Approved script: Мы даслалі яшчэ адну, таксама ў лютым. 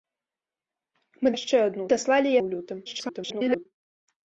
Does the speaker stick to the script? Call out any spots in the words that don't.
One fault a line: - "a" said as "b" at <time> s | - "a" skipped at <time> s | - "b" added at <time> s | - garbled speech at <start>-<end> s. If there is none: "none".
- "даслалі" skipped at 1.3 s
- "таксама" said as "даслалі" at 1.9 s
- garbled speech at 2.9-3.7 s